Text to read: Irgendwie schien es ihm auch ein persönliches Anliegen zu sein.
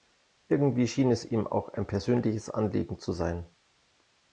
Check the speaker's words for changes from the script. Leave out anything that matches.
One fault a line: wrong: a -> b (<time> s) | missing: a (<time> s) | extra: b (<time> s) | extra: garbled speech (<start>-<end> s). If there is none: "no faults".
no faults